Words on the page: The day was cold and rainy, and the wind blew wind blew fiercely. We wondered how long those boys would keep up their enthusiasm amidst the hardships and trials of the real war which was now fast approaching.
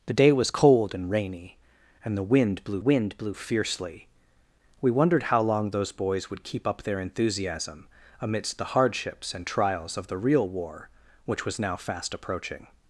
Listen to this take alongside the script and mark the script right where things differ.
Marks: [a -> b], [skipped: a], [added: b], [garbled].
The day was cold and rainy, and the wind blew wind blew fiercely. We wondered how long those boys would keep up their enthusiasm amidst the hardships and trials of the real war which was now fast approaching.